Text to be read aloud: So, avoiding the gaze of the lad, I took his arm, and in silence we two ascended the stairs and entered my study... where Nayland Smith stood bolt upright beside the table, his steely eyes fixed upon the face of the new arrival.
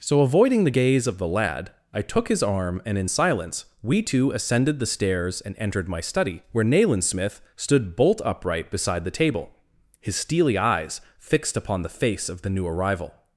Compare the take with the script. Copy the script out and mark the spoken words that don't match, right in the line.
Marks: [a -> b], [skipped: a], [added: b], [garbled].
So, avoiding the gaze of the lad, I took his arm, and in silence we two ascended the stairs and entered my study... where Nayland Smith stood bolt upright beside the table, his steely eyes fixed upon the face of the new arrival.